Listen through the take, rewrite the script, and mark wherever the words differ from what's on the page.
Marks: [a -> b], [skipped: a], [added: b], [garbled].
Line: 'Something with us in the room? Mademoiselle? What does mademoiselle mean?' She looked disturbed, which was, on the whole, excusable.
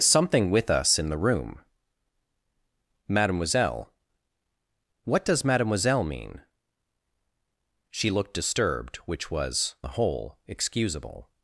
'Something with us in the room? Mademoiselle? What does mademoiselle mean?' She looked disturbed, which was, [skipped: on] the whole, excusable.